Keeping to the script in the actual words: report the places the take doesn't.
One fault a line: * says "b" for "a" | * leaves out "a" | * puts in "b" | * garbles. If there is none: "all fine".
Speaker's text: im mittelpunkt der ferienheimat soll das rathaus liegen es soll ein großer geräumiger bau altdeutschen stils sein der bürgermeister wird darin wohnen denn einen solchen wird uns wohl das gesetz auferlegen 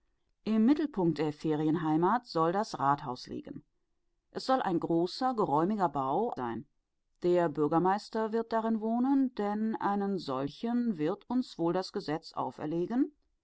* leaves out "altdeutschen stils"